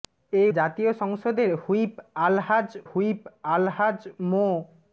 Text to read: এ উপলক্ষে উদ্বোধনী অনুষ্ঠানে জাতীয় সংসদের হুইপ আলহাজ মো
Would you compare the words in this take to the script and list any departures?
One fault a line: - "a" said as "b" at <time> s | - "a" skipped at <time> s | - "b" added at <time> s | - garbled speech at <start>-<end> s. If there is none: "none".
- "উপলক্ষে উদ্বোধনী অনুষ্ঠানে জাতীয় সংসদের" said as "জাতীয় সংসদের হুইপ আলহাজ" at 0.5 s